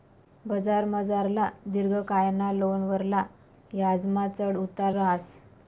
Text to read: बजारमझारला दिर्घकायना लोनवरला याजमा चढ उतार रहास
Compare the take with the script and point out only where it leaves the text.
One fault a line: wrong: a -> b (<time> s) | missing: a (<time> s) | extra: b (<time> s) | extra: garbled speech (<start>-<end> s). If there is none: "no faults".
no faults